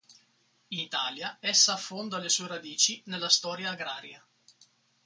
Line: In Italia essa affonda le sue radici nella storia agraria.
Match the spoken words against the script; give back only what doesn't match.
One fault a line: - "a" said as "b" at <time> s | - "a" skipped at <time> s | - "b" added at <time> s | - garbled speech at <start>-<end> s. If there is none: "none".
none